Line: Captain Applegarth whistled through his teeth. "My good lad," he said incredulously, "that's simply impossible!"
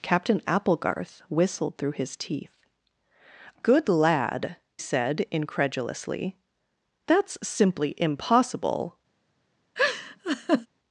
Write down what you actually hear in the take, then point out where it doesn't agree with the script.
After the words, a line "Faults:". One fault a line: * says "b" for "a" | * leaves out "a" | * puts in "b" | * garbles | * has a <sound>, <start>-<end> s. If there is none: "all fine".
Captain Applegarth whistled through his teeth. "Good lad," said incredulously, "that's simply impossible!"
Faults:
* leaves out "My"
* leaves out "he"
* has a laugh, 9.8-10.7 s